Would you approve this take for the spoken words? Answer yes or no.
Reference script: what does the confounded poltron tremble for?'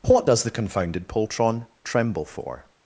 yes